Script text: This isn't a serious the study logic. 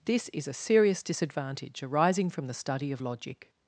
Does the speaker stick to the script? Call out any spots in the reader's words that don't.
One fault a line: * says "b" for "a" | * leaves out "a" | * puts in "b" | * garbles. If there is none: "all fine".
* says "is" for "isn't"
* puts in "disadvantage arising from"
* puts in "of"